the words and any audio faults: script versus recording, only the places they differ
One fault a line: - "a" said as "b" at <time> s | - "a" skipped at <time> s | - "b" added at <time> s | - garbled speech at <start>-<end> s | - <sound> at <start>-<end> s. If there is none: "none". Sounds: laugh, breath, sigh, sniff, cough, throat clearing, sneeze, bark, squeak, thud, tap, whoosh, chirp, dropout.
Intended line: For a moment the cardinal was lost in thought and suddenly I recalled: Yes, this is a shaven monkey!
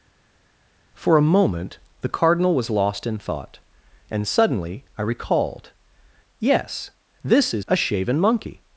none